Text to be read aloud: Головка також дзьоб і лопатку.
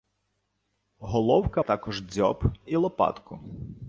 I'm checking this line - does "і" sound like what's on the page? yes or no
yes